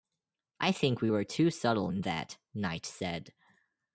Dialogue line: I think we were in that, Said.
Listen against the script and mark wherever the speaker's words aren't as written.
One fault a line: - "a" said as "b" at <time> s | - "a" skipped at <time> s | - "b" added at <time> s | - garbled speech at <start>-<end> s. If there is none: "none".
- "too subtle" added at 1.2 s
- "Knight" added at 2.5 s